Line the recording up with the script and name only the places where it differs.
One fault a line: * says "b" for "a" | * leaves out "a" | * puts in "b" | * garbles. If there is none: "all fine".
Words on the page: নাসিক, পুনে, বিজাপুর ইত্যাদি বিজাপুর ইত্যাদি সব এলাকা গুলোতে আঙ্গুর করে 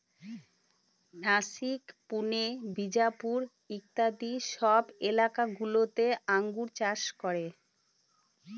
* leaves out "বিজাপুর ইত্যাদি"
* puts in "চাষ"